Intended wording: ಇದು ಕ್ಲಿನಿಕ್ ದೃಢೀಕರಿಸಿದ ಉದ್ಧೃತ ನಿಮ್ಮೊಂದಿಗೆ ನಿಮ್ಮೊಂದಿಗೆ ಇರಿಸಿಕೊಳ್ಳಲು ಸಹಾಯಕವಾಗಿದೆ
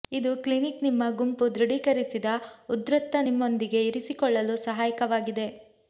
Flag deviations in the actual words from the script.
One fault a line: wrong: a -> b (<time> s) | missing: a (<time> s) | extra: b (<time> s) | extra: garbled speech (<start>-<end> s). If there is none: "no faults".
extra: ನಿಮ್ಮ ಗುಂಪು (0.8 s)
missing: ನಿಮ್ಮೊಂದಿಗೆ (3.8 s)